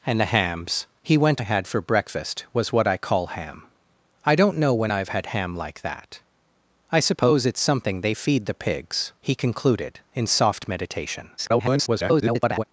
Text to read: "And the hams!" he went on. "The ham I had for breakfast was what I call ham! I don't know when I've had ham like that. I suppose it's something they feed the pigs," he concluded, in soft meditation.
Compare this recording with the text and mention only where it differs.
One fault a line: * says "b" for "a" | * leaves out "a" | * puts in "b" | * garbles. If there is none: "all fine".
* leaves out "on The ham"
* garbles